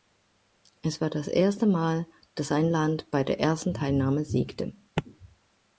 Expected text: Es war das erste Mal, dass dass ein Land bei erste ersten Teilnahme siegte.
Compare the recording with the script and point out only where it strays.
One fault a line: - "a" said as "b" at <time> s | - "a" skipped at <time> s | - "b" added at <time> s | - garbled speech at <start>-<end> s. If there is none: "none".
- "dass" skipped at 2.5 s
- "erste" said as "der" at 3.2 s